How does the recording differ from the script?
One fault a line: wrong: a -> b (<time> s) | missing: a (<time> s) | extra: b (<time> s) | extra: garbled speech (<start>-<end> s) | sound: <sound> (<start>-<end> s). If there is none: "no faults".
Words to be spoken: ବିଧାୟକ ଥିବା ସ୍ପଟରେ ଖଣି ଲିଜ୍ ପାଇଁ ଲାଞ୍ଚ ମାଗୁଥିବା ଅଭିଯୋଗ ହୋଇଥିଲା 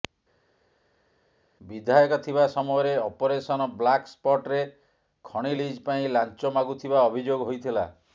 extra: ସମୟରେ ଅପରେସନ ବ୍ଲାକ୍ (2.5 s)